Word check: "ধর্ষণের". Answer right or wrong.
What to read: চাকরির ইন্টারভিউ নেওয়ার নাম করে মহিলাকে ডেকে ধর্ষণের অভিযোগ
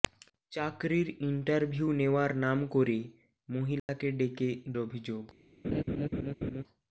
wrong